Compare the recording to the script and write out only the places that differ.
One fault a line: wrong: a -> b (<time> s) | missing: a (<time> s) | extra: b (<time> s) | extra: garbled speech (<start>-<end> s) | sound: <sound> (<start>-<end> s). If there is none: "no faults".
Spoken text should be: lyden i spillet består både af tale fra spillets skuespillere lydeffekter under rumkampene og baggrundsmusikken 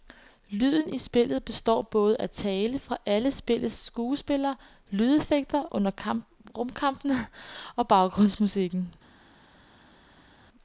extra: alle (3.0 s)